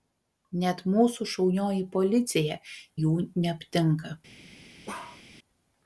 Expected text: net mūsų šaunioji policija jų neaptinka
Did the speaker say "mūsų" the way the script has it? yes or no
yes